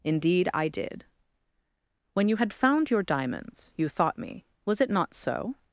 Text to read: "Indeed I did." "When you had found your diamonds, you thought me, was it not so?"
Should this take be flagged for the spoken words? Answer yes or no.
no